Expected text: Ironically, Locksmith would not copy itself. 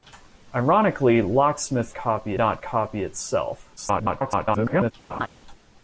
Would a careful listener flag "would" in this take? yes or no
yes